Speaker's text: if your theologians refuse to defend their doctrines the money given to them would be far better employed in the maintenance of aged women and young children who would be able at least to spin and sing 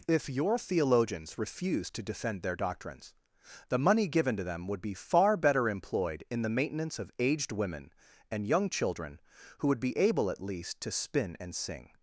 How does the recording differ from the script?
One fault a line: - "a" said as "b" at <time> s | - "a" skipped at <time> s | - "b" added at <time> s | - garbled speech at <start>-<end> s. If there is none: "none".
none